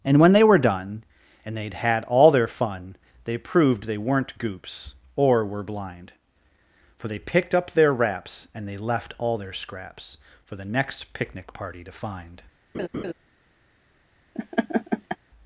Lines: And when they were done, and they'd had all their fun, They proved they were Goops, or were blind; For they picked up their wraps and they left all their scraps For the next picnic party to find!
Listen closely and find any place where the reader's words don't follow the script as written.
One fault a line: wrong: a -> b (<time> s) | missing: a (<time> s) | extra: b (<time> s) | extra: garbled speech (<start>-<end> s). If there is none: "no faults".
wrong: were -> weren't (4.0 s)